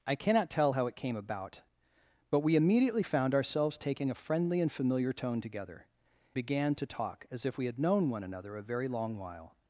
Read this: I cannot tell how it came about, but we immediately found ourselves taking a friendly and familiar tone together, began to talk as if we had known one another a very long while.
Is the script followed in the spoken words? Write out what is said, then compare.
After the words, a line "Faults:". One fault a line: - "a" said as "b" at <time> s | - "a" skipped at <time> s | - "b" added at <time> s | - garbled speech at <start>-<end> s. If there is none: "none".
I cannot tell how it came about, but we immediately found ourselves taking a friendly and familiar tone together, began to talk as if we had known one another a very long while.
Faults:
none